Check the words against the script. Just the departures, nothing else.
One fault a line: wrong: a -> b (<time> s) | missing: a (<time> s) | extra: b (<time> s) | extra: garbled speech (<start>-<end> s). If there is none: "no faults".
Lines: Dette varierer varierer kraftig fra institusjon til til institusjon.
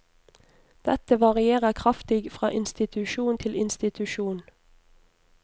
missing: varierer (1.7 s)
missing: til (3.5 s)